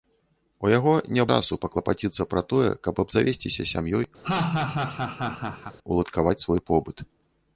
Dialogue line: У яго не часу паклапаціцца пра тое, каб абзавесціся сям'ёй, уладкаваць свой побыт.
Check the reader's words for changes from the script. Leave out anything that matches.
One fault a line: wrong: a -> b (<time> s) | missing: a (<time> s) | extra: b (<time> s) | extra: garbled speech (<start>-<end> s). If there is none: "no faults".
no faults